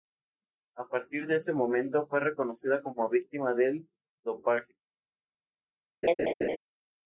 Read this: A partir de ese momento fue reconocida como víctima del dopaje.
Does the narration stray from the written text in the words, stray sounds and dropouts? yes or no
yes